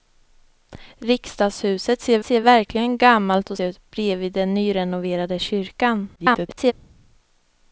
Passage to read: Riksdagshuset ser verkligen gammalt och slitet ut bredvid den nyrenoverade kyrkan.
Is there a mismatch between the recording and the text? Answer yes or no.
yes